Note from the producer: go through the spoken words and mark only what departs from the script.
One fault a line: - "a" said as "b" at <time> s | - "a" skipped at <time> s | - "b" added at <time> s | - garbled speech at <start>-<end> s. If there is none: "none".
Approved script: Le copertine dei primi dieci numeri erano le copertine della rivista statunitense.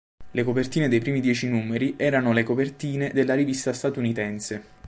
none